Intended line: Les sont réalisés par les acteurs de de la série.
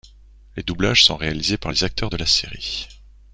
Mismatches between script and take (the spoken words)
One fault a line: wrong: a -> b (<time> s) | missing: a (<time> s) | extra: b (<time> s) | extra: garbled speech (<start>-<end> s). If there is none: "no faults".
extra: doublages (0.6 s)
missing: de (2.2 s)